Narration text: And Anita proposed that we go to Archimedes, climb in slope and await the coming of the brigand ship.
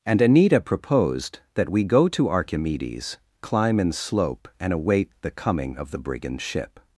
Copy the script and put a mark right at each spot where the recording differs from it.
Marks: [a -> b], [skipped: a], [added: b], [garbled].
And Anita proposed that we go to Archimedes, climb in slope and await the coming of the brigand ship.